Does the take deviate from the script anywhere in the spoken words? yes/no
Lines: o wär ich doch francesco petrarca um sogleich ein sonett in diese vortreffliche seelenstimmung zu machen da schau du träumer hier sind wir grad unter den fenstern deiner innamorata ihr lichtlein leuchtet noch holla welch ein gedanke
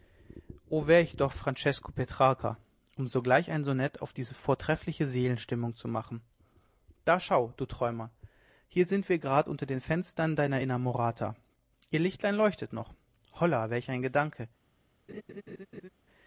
yes